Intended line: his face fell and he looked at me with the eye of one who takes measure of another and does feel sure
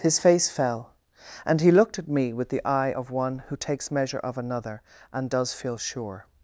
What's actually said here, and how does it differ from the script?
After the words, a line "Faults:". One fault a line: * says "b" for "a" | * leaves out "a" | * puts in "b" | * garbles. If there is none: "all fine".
his face fell and he looked at me with the eye of one who takes measure of another and does feel sure
Faults:
all fine